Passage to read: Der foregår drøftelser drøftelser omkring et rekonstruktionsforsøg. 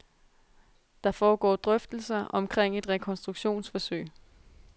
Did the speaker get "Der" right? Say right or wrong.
right